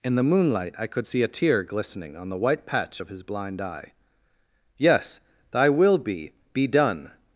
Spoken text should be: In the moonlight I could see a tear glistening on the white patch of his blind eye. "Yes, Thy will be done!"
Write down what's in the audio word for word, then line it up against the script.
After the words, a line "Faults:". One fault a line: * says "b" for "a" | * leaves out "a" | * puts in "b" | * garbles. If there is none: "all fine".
In the moonlight I could see a tear glistening on the white patch of his blind eye. "Yes, Thy will be be done!"
Faults:
* puts in "be"